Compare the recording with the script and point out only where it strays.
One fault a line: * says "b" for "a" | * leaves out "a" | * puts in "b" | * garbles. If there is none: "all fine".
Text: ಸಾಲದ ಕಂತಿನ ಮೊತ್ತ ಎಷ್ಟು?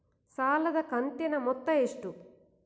all fine